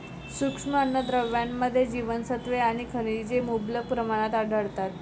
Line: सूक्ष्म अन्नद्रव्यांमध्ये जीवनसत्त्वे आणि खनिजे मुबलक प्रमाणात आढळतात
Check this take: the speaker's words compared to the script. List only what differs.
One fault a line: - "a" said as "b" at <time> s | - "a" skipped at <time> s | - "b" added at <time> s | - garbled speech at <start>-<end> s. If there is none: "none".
none